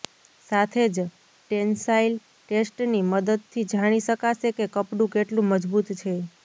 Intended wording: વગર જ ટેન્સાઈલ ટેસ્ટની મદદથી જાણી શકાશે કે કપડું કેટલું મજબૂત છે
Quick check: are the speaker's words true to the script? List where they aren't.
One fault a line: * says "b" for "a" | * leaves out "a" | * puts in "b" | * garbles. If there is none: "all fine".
* says "સાથે" for "વગર"